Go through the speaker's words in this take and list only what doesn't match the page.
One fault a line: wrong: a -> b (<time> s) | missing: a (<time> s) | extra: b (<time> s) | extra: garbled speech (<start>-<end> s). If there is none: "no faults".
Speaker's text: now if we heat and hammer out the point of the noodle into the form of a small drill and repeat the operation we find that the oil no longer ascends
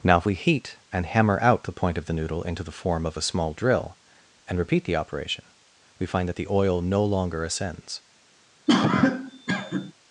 no faults